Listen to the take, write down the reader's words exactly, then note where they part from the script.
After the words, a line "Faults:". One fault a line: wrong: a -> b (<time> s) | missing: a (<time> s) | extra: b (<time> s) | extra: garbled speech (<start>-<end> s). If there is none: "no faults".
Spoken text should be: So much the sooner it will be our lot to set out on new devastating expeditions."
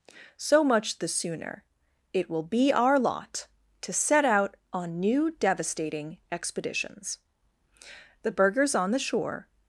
So much the sooner it will be our lot to set out on new devastating expeditions." The burghers on the shore
Faults:
extra: The burghers on the shore (8.2 s)